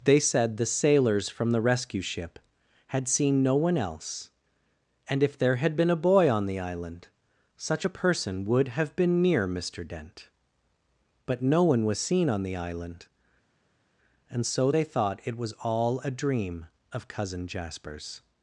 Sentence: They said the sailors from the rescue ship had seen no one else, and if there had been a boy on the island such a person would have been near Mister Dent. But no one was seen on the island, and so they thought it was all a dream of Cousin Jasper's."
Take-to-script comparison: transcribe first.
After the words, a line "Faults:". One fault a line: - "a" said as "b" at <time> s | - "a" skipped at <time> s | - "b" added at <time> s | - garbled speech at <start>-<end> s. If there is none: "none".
They said the sailors from the rescue ship had seen no one else, and if there had been a boy on the island such a person would have been near Mister Dent. But no one was seen on the island, and so they thought it was all a dream of Cousin Jasper's."
Faults:
none